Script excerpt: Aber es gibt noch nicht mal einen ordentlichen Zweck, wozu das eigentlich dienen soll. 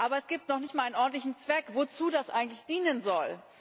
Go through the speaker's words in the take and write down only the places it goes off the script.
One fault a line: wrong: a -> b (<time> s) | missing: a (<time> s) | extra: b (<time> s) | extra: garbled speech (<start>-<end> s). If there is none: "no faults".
no faults